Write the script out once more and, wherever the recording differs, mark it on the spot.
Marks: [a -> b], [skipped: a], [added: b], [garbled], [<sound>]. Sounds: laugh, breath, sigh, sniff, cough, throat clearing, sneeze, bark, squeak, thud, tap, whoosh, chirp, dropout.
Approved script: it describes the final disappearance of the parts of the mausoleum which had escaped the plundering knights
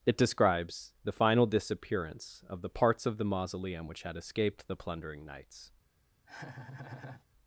it describes the final disappearance of the parts of the mausoleum which had escaped the plundering knights [laugh]